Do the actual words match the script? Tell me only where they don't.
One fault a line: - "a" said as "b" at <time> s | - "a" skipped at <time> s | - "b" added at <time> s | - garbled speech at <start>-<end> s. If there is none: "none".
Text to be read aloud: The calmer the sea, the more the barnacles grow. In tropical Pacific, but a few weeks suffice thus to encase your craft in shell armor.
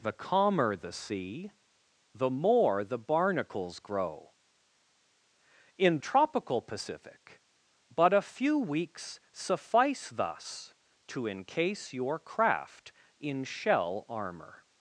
none